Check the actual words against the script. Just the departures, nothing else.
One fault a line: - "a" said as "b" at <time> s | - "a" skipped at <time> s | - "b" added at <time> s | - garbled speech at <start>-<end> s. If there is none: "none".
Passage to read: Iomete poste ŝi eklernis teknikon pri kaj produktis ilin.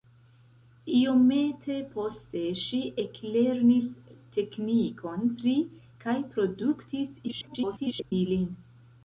- garbled speech at 7.3-8.1 s